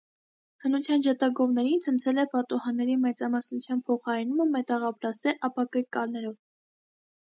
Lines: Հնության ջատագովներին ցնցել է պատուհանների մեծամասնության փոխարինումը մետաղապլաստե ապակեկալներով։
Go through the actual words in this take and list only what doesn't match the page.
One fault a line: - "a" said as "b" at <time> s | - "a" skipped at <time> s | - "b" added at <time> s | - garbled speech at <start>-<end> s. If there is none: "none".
none